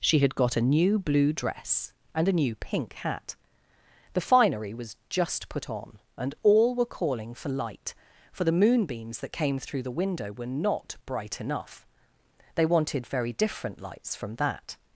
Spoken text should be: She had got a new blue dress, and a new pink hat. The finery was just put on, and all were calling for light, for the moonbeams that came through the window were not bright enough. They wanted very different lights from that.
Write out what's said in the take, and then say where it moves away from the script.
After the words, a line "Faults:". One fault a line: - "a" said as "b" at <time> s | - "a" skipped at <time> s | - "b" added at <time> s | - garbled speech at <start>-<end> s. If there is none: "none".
She had got a new blue dress, and a new pink hat. The finery was just put on, and all were calling for light, for the moonbeams that came through the window were not bright enough. They wanted very different lights from that.
Faults:
none